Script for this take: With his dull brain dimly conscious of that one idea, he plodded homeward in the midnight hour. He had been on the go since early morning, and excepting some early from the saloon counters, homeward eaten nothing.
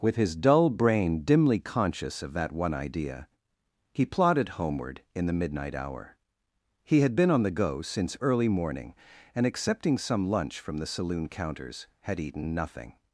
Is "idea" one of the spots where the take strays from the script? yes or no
no